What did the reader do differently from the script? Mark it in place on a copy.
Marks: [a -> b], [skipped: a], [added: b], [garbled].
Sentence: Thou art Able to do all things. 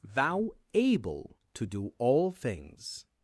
Thou [skipped: art] Able to do all things.